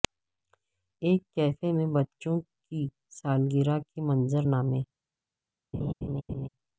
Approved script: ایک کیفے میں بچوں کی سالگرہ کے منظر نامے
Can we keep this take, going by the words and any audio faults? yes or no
no